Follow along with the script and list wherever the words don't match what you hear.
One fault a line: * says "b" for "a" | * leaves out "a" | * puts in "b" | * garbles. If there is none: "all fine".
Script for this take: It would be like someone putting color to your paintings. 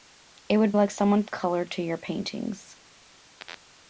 * leaves out "be"
* leaves out "putting"